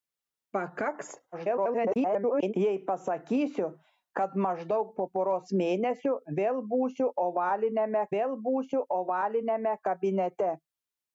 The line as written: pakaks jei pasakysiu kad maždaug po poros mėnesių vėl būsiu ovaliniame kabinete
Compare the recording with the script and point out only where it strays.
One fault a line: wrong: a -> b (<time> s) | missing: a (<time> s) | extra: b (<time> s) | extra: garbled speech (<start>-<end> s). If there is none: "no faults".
extra: garbled speech (1.3-2.5 s)
extra: vėl būsiu ovaliniame (8.1 s)